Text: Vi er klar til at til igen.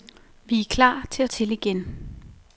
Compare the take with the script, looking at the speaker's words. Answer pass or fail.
pass